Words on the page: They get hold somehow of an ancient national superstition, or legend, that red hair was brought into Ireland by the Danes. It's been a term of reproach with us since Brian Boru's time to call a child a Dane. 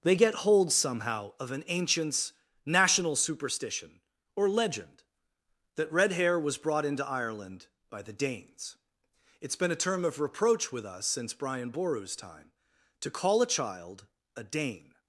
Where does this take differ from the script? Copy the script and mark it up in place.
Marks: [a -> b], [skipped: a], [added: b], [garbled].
They get hold somehow of an [ancient -> ancients] national superstition, or legend, that red hair was brought into Ireland by the Danes. It's been a term of reproach with us since Brian Boru's time to call a child a Dane.